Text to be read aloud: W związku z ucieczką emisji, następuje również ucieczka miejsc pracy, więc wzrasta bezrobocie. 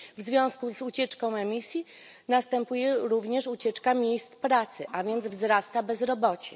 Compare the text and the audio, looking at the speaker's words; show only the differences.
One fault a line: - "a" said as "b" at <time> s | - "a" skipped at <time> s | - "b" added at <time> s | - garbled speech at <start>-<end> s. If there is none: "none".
- "a" added at 4.9 s